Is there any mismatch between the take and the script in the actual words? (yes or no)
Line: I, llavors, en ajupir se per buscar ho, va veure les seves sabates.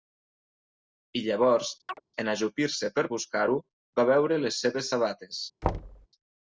no